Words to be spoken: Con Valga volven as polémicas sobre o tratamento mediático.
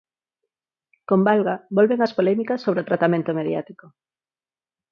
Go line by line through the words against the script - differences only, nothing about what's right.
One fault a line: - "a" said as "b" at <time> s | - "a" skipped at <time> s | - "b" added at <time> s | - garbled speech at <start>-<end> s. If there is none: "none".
none